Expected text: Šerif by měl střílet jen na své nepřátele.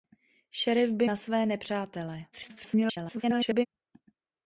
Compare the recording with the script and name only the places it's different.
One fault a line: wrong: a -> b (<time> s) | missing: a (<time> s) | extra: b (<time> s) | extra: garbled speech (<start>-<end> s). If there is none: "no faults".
missing: měl střílet jen (1.1 s)
extra: garbled speech (2.3-3.7 s)